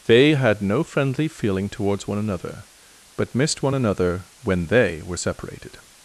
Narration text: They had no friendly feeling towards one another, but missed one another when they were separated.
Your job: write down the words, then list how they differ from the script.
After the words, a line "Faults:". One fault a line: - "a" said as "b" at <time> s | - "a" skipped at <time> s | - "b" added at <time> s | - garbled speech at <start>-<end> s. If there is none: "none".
They had no friendly feeling towards one another, but missed one another when they were separated.
Faults:
none